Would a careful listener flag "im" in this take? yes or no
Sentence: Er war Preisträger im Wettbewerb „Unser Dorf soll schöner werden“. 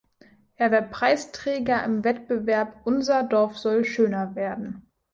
no